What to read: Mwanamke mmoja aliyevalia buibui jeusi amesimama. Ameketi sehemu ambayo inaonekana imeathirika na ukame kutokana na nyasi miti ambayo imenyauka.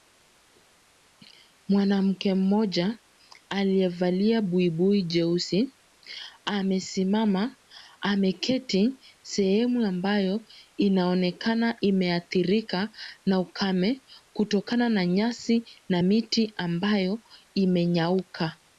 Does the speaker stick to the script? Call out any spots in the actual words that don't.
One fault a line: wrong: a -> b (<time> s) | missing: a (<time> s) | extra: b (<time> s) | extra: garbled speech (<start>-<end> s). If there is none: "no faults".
extra: na (15.9 s)